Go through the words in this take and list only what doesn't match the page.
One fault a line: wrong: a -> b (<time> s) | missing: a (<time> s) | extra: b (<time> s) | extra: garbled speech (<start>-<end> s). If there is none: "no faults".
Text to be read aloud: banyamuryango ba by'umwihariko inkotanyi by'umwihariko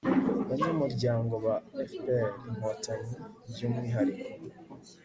wrong: by'umwihariko -> fpr (1.9 s)